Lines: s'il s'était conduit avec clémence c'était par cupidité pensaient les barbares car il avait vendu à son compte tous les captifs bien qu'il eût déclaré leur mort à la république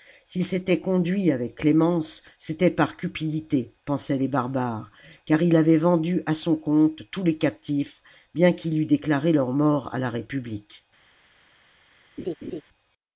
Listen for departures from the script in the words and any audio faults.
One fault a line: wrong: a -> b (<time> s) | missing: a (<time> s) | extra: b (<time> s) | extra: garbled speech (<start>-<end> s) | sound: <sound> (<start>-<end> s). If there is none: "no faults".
sound: laugh (12.2-12.6 s)